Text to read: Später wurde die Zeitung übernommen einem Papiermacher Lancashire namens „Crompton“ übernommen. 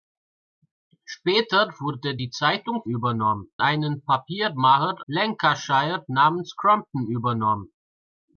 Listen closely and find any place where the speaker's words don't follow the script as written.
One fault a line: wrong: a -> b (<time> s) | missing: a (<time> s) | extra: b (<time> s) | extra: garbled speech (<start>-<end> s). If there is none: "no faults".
no faults